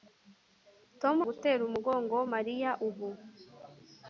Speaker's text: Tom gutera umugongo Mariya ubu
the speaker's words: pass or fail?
pass